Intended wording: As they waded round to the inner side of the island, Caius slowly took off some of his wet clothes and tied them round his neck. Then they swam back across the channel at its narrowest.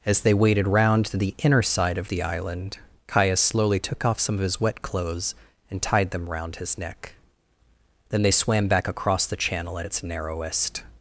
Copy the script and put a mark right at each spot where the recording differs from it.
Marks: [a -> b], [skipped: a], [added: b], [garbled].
As they waded round to the inner side of the island, Caius slowly took off some of his wet clothes and tied them round his neck. Then they swam back across the channel at its narrowest.